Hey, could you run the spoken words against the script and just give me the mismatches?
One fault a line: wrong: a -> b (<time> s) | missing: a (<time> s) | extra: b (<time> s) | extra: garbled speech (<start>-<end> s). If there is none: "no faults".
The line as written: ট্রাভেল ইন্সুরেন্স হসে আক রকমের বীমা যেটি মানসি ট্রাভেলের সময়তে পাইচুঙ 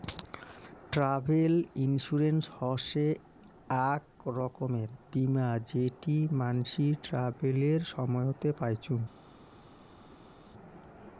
no faults